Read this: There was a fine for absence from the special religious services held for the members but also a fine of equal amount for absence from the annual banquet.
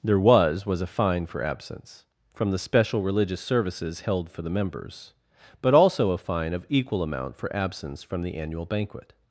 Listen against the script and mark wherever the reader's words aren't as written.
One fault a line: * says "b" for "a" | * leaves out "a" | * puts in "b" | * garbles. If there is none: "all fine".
* puts in "was"